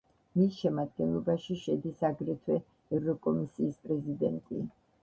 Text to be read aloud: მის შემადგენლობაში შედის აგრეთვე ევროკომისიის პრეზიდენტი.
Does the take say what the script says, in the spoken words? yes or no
yes